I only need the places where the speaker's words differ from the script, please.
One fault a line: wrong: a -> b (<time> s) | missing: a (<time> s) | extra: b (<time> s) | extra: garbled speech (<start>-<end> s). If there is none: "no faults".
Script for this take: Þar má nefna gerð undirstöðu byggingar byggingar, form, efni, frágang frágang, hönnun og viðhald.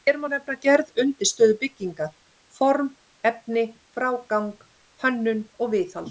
wrong: Þar -> Hér (0.1 s)
missing: byggingar (2.1 s)
missing: frágang (4.5 s)